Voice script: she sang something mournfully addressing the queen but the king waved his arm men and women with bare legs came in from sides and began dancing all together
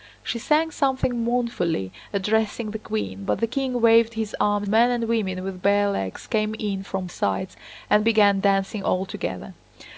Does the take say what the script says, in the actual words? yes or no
yes